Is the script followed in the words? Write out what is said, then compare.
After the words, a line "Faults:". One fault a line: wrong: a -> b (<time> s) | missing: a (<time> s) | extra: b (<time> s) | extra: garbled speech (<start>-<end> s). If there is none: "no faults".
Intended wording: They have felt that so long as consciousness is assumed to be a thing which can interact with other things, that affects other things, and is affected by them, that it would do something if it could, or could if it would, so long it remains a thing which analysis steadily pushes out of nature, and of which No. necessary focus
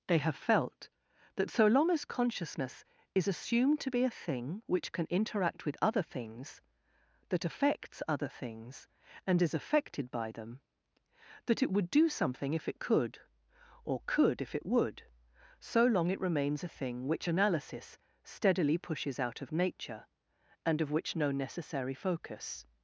They have felt that so long as consciousness is assumed to be a thing which can interact with other things, that affects other things, and is affected by them, that it would do something if it could, or could if it would, so long it remains a thing which analysis steadily pushes out of nature, and of which No. necessary focus
Faults:
no faults